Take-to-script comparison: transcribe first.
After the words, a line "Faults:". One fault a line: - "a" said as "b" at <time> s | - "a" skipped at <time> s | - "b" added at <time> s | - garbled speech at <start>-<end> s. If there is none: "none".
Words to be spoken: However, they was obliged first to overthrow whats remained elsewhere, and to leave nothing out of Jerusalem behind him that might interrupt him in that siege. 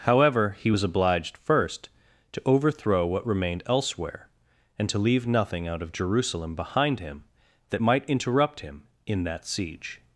However, he was obliged first to overthrow what remained elsewhere, and to leave nothing out of Jerusalem behind him that might interrupt him in that siege.
Faults:
- "they" said as "he" at 0.6 s
- "whats" said as "what" at 3.0 s